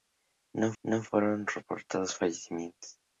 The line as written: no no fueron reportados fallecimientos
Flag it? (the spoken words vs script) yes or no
no